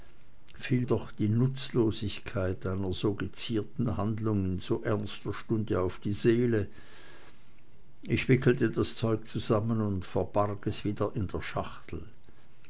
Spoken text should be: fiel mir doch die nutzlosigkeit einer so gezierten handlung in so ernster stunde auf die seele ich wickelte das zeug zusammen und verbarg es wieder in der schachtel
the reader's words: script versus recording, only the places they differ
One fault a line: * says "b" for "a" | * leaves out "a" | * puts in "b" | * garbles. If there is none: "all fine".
* leaves out "mir"